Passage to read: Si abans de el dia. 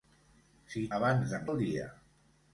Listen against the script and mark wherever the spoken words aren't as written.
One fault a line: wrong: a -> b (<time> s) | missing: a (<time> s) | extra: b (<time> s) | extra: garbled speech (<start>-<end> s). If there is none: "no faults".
no faults